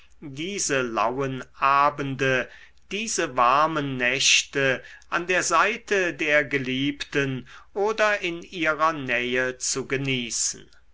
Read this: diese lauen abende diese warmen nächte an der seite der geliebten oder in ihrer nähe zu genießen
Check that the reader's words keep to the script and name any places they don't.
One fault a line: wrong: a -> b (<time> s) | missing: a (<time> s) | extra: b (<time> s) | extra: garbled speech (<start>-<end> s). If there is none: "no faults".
no faults